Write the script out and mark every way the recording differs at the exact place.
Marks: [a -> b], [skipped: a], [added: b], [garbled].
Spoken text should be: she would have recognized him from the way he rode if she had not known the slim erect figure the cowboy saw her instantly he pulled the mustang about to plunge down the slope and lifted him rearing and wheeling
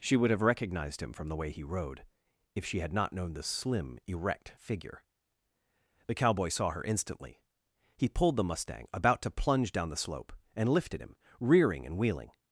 she would have recognized him from the way he rode if she had not known the slim erect figure the cowboy saw her instantly he pulled the mustang about to plunge down the slope and lifted him rearing and wheeling